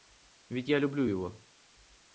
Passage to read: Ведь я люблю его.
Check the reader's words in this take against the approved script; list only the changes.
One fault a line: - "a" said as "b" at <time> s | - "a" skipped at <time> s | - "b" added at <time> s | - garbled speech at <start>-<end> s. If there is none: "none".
none